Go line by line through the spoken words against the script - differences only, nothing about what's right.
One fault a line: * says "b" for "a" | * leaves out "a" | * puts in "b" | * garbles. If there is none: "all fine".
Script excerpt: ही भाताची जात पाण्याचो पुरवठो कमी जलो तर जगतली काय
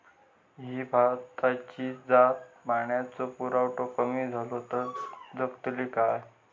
all fine